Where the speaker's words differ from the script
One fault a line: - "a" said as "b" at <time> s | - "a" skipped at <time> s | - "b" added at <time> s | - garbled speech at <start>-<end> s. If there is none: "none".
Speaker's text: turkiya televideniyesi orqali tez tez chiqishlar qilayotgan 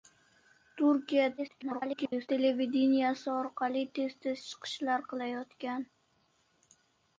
- garbled speech at 1.4-2.3 s